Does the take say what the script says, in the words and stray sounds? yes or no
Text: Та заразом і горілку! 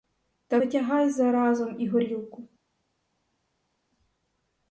no